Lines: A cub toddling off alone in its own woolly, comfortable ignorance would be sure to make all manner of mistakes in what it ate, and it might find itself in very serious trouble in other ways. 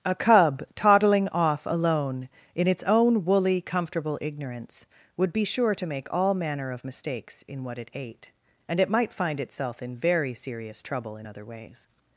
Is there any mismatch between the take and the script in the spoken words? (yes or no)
no